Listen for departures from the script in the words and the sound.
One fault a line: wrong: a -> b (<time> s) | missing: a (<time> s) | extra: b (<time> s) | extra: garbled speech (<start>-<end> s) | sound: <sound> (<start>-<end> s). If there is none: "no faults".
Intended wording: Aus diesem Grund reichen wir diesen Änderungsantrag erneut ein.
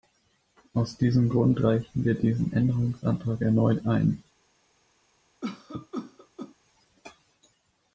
sound: cough (5.4-6.5 s)